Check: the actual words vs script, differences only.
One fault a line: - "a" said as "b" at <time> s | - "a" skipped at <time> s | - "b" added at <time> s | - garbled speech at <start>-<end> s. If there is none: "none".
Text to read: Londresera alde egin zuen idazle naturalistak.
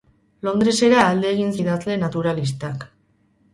- "zuen" skipped at 1.5 s